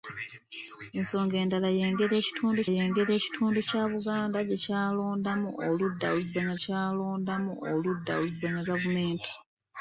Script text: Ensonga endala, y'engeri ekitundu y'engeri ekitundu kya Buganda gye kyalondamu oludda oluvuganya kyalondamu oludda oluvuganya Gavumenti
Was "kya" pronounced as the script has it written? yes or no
yes